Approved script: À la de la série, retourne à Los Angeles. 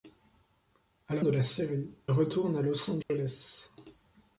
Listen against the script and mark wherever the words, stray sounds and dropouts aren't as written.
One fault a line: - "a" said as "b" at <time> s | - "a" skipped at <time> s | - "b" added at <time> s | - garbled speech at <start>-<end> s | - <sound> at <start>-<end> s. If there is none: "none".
- dropout at 3.0-3.1 s